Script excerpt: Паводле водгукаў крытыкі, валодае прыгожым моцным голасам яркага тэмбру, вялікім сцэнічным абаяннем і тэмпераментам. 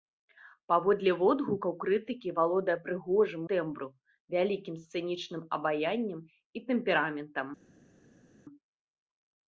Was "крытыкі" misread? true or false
false